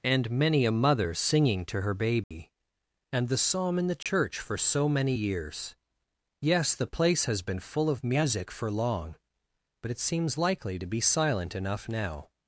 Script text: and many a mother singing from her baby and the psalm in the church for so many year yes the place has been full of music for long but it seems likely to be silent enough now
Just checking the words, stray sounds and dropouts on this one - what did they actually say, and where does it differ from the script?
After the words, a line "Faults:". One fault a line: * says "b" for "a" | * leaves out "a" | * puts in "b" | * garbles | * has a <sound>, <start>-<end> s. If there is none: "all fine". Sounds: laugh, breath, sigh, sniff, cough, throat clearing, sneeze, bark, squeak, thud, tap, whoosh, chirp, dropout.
and many a mother singing to her baby and the psalm in the church for so many years yes the place has been full of music for long but it seems likely to be silent enough now
Faults:
* says "to" for "from"
* has a dropout, 2.2-2.3 s
* has a dropout, 4.0-4.1 s
* says "years" for "year"